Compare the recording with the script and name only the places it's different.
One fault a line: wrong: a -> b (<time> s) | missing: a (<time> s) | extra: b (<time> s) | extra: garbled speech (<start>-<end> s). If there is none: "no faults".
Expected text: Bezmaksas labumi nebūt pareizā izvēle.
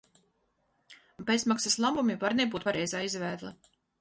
extra: var (2.2 s)